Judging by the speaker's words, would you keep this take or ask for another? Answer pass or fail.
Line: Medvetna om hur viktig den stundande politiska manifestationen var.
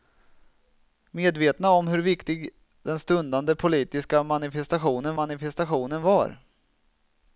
fail